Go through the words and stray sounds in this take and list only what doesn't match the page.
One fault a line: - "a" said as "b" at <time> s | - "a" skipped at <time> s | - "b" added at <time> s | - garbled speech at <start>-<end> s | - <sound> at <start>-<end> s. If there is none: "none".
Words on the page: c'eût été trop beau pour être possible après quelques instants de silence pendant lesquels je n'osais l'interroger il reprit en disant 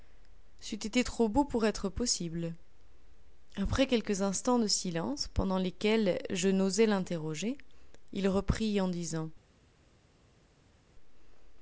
none